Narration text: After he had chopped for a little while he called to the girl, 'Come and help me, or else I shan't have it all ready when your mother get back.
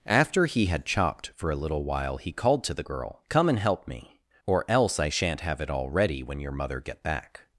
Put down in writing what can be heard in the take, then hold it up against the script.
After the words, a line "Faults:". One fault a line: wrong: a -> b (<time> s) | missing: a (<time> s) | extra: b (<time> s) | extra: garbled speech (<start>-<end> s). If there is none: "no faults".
After he had chopped for a little while he called to the girl, 'Come and help me, or else I shan't have it all ready when your mother get back.
Faults:
no faults